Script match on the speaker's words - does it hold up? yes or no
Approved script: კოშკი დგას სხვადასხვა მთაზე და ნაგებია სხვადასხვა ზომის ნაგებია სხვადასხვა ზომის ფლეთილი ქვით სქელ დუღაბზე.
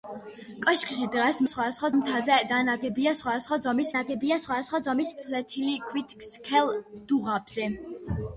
yes